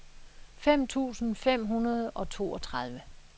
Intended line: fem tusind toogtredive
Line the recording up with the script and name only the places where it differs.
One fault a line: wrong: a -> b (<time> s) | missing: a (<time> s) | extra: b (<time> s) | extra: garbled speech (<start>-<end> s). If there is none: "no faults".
extra: fem hundrede og (1.4 s)